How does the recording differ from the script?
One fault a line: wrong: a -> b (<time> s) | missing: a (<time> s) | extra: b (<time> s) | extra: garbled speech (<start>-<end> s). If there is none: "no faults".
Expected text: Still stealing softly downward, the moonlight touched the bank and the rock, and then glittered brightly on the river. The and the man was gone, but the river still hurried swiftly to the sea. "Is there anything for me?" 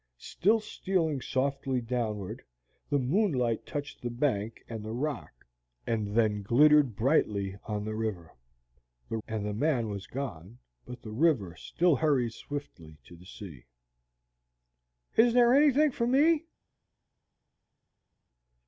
no faults